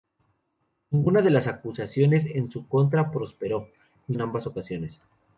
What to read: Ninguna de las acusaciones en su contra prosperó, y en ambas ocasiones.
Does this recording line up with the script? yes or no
yes